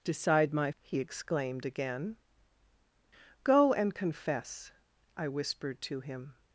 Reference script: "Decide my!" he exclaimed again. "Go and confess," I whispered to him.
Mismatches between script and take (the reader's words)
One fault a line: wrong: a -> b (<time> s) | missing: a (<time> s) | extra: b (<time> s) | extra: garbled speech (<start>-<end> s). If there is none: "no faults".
no faults